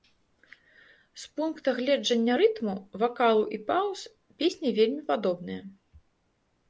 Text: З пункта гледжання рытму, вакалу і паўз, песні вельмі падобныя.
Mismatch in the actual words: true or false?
false